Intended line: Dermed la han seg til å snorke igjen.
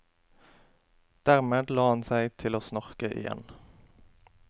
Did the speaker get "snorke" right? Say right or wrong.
right